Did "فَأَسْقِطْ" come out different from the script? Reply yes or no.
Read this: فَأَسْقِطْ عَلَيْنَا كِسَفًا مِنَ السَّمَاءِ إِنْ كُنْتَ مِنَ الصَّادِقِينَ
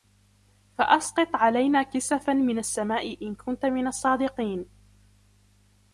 no